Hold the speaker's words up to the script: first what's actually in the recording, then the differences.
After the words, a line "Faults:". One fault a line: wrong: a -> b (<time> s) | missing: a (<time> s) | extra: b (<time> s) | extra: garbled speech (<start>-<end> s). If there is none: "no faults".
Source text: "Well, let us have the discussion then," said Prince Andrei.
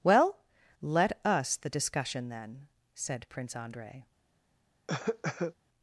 "Well, let us the discussion then," said Prince Andrei.
Faults:
missing: have (1.6 s)